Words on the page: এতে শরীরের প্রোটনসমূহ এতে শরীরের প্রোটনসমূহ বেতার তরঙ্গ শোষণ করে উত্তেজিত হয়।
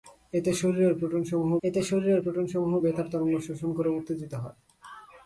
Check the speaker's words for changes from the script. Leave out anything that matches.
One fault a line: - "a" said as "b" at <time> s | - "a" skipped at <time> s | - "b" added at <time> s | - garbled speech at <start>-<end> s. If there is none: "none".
none